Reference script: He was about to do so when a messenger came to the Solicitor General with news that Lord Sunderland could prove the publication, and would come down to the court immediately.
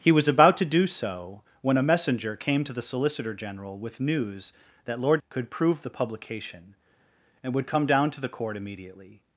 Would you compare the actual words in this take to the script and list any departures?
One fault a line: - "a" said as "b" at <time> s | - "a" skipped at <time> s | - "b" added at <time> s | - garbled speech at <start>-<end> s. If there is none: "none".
- "Sunderland" skipped at 5.2 s